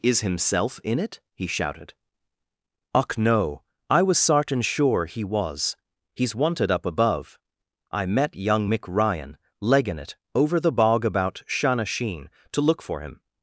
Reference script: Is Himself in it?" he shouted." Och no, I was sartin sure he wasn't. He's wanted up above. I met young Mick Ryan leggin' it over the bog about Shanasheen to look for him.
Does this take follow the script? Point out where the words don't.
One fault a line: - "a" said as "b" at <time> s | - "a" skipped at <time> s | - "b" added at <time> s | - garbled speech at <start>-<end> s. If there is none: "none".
- "wasn't" said as "was" at 5.2 s